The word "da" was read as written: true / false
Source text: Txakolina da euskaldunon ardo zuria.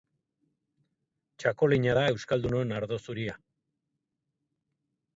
true